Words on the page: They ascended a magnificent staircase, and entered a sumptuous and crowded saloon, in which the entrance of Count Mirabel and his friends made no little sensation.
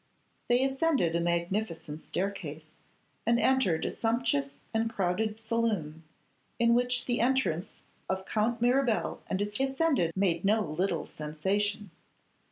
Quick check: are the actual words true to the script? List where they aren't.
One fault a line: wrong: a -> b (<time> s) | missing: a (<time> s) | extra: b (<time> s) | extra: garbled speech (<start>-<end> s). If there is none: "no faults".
wrong: friends -> ascended (9.6 s)